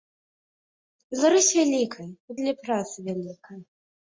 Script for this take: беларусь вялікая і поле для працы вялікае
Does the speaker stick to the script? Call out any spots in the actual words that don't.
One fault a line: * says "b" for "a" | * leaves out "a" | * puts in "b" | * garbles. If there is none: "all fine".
* leaves out "поле"